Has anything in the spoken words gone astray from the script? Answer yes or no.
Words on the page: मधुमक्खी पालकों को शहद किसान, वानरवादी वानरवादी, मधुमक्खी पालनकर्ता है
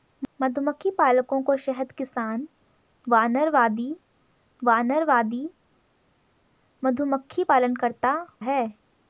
no